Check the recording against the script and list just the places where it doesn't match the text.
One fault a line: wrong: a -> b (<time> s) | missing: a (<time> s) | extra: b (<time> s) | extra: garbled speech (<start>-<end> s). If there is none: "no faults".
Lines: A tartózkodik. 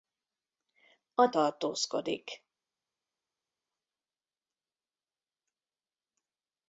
no faults